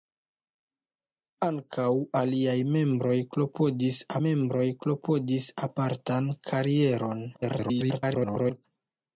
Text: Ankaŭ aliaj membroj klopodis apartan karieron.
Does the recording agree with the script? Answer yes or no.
no